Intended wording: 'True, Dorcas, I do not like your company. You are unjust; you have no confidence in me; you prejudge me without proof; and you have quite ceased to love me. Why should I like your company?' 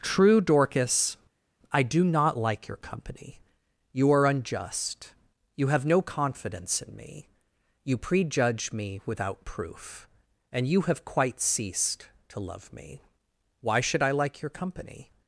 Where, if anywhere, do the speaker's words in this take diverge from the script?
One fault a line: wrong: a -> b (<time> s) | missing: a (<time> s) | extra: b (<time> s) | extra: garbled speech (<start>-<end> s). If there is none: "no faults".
no faults